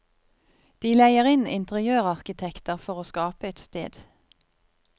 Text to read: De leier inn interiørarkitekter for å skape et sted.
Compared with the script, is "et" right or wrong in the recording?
right